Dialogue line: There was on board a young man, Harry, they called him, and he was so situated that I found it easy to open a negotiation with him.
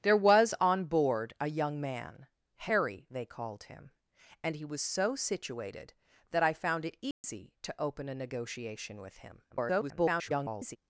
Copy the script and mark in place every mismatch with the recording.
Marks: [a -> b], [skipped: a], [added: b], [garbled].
There was on board a young man, Harry, they called him, and he was so situated that I found it easy to open a negotiation with him. [garbled]